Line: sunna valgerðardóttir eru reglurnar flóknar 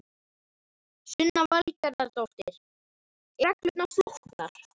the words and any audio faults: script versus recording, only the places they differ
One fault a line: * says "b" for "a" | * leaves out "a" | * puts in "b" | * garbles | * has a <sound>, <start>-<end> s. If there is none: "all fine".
* leaves out "eru"